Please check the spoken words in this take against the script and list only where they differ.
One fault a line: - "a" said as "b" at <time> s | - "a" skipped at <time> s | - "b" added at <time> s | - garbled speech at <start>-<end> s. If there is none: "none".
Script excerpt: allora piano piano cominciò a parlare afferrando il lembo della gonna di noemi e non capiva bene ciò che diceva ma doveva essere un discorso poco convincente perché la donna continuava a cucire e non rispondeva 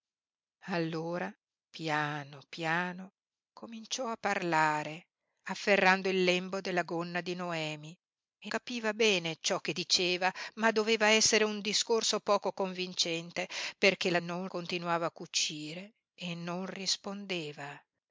- "non" skipped at 8.5 s
- "donna" said as "non" at 14.2 s